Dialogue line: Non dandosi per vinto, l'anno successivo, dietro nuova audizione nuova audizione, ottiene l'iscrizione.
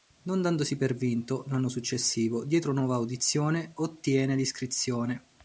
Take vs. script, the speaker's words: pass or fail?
fail